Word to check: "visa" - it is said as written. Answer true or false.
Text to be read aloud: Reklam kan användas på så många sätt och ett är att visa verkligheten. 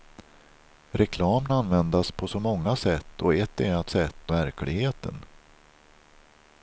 false